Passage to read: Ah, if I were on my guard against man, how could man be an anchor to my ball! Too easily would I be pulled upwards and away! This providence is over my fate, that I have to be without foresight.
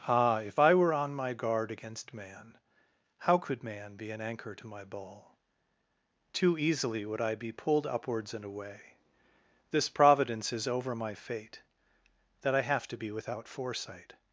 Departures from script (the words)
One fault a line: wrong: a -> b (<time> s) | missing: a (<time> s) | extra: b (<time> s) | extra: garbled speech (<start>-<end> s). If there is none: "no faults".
no faults